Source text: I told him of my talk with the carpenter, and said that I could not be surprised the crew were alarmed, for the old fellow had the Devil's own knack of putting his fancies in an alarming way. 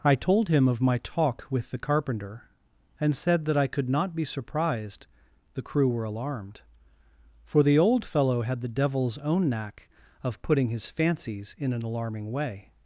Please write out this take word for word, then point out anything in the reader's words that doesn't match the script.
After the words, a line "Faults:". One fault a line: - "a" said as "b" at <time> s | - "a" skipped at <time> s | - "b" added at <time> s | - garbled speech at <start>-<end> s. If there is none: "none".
I told him of my talk with the carpenter, and said that I could not be surprised the crew were alarmed, for the old fellow had the Devil's own knack of putting his fancies in an alarming way.
Faults:
none